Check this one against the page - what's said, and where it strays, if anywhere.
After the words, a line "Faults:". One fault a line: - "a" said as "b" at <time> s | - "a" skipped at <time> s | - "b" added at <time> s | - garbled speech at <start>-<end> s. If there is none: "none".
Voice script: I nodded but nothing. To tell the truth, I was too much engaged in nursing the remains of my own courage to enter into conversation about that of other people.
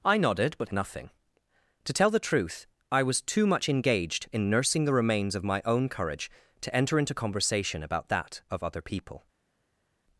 I nodded but nothing. To tell the truth, I was too much engaged in nursing the remains of my own courage to enter into conversation about that of other people.
Faults:
none